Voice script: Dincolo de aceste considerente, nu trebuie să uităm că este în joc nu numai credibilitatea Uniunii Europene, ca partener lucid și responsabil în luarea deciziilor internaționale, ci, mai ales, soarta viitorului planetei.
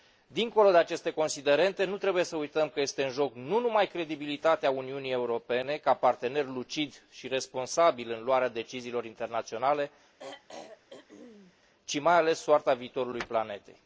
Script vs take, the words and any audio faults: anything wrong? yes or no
yes